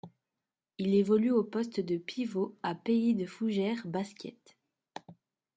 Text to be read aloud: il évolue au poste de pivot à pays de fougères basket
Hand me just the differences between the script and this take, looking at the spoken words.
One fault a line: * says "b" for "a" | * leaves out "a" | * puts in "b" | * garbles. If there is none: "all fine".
all fine